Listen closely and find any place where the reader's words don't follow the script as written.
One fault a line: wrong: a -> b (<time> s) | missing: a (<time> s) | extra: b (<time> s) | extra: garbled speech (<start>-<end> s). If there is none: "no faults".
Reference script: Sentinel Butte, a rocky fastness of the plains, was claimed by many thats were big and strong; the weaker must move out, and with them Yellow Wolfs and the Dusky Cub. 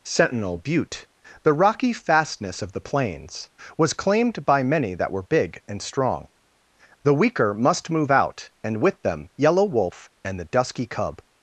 wrong: a -> the (1.4 s)
wrong: thats -> that (5.0 s)
wrong: Wolfs -> Wolf (9.6 s)